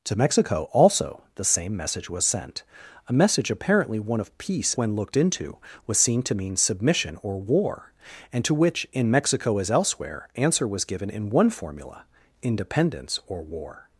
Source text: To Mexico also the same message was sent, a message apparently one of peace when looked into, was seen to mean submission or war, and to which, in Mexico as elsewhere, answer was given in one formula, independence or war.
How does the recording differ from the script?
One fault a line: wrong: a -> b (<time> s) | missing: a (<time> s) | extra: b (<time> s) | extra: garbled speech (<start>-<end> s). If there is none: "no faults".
no faults